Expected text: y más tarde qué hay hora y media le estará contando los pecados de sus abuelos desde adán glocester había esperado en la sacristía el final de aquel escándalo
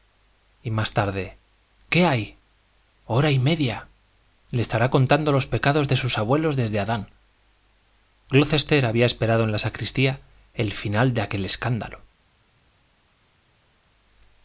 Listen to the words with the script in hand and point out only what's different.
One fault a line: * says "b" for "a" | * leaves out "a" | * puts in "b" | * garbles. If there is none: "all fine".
all fine